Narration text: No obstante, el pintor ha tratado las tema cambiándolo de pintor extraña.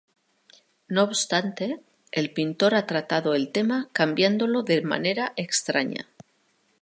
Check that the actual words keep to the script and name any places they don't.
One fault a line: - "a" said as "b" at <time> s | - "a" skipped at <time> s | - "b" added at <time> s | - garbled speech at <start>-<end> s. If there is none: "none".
- "las" said as "el" at 3.4 s
- "pintor" said as "manera" at 4.8 s